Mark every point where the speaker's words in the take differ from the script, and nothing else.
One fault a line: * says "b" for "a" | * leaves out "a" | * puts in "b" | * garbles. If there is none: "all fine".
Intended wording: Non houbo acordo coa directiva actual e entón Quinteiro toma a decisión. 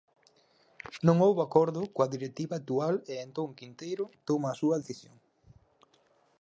* puts in "súa"